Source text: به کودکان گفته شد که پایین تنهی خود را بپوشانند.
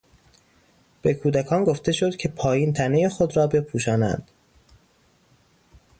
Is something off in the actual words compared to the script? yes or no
no